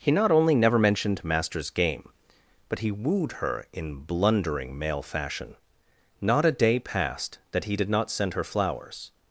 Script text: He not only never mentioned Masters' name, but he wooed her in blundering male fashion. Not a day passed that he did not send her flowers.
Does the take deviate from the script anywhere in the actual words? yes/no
yes